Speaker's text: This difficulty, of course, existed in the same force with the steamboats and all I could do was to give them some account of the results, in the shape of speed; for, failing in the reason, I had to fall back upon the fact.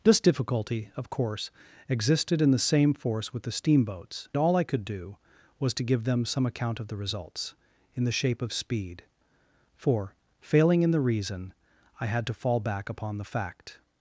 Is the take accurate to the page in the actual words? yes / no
no